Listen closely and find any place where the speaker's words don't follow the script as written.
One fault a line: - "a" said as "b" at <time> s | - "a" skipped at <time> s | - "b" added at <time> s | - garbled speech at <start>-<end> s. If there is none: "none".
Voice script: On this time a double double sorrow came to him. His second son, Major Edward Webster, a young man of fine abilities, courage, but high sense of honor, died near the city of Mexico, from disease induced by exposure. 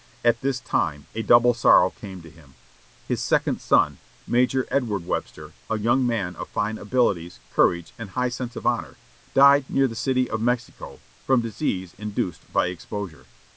- "On" said as "At" at 0.2 s
- "double" skipped at 1.5 s
- "but" said as "and" at 8.0 s